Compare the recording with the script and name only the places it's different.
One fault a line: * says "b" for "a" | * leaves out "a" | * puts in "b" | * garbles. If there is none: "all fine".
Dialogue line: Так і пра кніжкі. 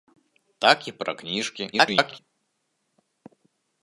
* garbles